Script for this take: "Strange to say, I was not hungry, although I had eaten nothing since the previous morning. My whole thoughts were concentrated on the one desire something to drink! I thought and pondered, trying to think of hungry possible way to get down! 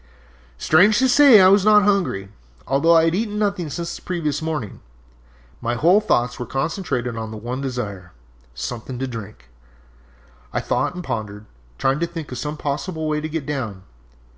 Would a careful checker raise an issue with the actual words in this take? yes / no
yes